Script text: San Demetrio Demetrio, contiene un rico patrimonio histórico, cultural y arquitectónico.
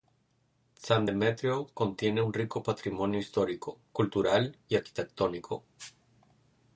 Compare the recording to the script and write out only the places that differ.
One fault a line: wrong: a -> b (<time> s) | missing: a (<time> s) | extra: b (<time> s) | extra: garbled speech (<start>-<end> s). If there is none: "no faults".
missing: Demetrio (1.7 s)